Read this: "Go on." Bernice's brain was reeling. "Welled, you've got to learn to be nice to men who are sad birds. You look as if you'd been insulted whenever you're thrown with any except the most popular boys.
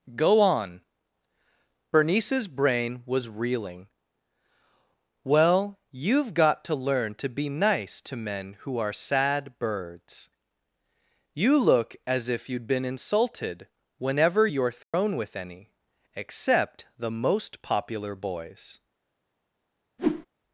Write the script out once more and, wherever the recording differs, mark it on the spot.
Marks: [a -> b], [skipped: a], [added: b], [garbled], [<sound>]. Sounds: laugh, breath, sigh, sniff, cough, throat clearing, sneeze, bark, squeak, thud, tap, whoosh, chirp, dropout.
"Go on." Bernice's brain was reeling. ["Welled, -> Well] you've got to learn to be nice to men who are sad birds. You look as if you'd been insulted whenever you're thrown [dropout] with any except the most popular boys. [whoosh]